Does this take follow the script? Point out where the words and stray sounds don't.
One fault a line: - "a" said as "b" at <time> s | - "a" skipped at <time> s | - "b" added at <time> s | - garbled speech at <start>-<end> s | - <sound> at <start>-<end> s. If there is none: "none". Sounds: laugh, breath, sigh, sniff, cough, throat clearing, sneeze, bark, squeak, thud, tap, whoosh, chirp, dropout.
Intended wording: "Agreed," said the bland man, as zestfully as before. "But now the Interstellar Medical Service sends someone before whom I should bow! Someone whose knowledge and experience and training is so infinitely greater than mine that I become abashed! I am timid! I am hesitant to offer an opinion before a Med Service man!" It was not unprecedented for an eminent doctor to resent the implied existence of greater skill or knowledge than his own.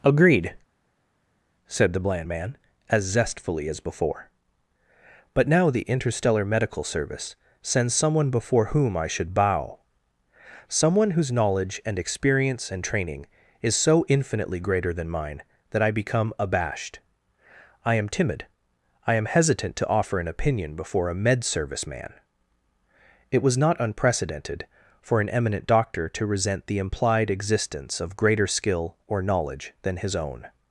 none